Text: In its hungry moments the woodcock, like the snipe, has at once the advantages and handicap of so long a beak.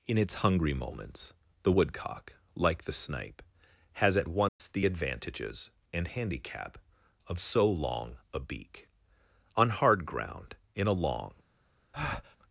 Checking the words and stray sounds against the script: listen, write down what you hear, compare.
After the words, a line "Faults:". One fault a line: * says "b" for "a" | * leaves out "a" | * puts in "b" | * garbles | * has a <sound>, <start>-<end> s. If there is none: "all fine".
In its hungry moments the woodcock, like the snipe, has at once the advantages and handicap of so long a beak. On hard ground, in a long
Faults:
* has a dropout, 4.5-4.6 s
* puts in "On hard ground in a long"
* has a breath, 11.9-12.4 s